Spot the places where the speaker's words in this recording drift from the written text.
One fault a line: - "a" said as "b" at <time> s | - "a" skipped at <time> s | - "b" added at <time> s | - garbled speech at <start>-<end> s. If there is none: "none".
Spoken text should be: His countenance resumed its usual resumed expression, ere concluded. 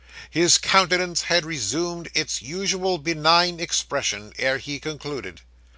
- "had" added at 1.3 s
- "resumed" said as "benign" at 3.0 s
- "he" added at 4.6 s